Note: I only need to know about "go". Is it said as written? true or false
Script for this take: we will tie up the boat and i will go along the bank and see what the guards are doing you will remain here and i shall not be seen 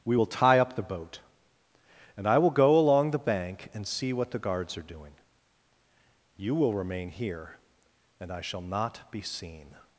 true